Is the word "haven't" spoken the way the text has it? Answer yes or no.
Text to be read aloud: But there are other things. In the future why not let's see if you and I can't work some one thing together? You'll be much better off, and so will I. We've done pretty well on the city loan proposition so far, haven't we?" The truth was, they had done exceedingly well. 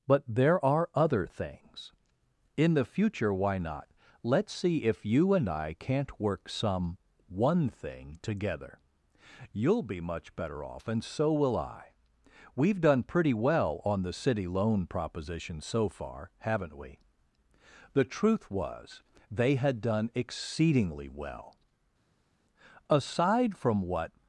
yes